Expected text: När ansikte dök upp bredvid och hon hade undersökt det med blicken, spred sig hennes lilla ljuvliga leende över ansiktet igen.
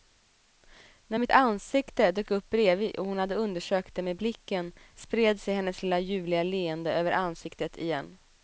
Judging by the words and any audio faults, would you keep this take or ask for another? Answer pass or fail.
fail